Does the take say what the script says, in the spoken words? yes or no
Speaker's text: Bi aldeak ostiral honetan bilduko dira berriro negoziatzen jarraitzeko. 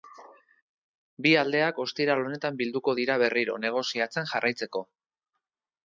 yes